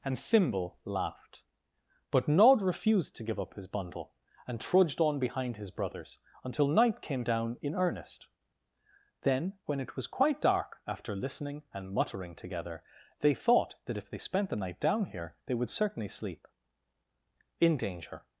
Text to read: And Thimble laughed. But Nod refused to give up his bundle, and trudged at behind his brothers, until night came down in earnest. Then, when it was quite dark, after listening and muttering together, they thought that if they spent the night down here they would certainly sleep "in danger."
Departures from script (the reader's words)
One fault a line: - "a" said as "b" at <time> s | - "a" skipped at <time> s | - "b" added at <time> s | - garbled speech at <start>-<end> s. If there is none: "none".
- "at" said as "on" at 5.0 s